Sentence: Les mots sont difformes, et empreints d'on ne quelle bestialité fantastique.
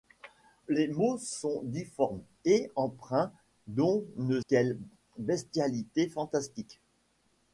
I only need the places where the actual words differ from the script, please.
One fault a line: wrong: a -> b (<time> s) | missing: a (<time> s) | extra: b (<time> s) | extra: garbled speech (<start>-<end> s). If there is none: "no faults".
no faults